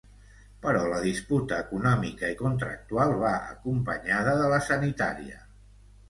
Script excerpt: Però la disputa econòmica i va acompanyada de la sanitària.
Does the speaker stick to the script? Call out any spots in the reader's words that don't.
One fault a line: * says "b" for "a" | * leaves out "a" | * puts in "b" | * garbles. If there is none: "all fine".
* puts in "contractual"